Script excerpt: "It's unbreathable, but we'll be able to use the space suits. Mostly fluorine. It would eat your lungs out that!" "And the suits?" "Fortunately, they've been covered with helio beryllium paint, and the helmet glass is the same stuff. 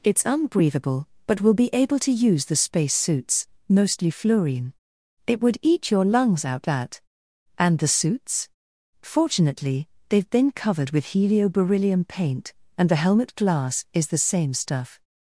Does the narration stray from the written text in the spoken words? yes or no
no